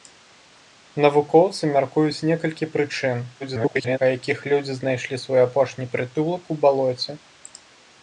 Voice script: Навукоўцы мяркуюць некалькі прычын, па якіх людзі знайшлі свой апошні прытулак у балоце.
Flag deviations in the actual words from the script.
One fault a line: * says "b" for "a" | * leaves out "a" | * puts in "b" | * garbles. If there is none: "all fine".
* garbles